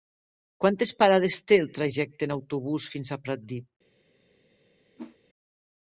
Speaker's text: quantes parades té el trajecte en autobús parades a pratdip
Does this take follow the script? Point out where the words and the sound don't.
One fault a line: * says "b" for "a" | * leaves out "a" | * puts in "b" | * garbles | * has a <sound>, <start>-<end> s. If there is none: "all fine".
* says "fins" for "parades"
* has a whoosh, 5.0-5.2 s